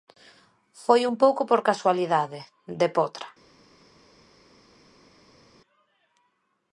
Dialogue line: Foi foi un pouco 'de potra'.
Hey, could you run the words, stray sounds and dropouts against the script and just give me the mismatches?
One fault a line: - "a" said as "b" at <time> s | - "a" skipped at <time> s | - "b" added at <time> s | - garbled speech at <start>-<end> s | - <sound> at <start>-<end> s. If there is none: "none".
- "foi" skipped at 1.0 s
- "por casualidade" added at 1.5 s